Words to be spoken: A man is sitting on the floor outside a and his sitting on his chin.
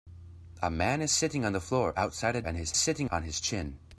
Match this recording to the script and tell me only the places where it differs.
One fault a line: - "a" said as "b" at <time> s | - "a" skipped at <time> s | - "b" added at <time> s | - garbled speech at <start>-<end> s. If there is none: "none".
none